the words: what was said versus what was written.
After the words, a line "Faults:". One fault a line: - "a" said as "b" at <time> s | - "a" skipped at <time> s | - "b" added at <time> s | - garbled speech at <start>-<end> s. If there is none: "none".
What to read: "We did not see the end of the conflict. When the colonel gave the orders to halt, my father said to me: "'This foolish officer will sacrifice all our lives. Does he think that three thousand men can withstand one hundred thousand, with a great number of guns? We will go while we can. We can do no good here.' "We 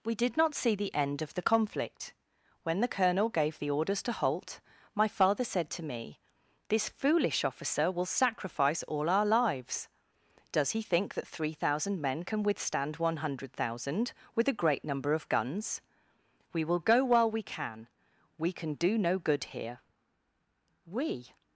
"We did not see the end of the conflict. When the colonel gave the orders to halt, my father said to me: "'This foolish officer will sacrifice all our lives. Does he think that three thousand men can withstand one hundred thousand, with a great number of guns? We will go while we can. We can do no good here.' "We
Faults:
none